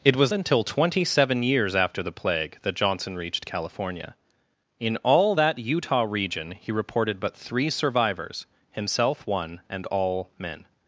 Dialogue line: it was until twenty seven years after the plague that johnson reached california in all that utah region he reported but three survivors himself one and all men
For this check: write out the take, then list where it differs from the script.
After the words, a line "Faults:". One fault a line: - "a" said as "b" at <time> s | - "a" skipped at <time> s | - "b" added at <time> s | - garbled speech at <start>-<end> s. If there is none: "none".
it was until twenty seven years after the plague that johnson reached california in all that utah region he reported but three survivors himself one and all men
Faults:
none